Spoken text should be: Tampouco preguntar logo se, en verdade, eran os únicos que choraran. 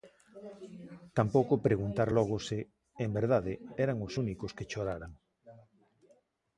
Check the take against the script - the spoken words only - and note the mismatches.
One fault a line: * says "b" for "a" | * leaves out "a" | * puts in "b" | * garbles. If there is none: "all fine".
all fine